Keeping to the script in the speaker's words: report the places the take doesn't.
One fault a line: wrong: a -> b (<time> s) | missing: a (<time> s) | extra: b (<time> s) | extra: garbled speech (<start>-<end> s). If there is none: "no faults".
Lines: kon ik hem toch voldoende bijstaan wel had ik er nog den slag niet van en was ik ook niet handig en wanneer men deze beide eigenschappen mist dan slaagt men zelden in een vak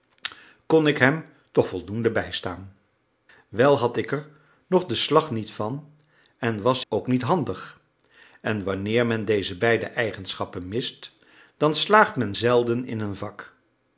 missing: ik (6.8 s)